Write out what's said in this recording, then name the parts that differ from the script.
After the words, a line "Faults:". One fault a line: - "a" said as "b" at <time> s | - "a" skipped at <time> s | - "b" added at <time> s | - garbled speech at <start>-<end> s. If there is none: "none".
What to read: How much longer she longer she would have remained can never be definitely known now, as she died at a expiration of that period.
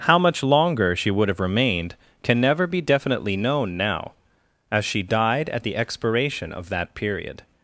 How much longer she would have remained can never be definitely known now, as she died at the expiration of that period.
Faults:
- "longer she" skipped at 1.1 s
- "a" said as "the" at 5.6 s